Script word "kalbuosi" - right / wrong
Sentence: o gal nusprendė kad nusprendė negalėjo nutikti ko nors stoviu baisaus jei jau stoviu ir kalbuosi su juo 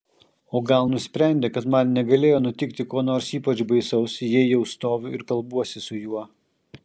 right